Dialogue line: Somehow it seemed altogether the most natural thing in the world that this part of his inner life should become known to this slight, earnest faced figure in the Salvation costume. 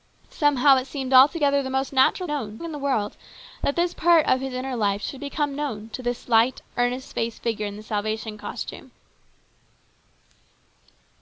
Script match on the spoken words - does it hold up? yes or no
no